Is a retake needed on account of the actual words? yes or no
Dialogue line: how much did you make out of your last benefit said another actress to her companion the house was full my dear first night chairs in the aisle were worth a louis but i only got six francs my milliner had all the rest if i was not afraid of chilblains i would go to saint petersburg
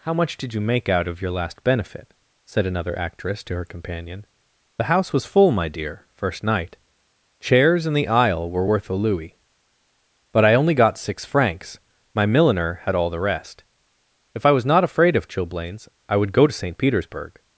no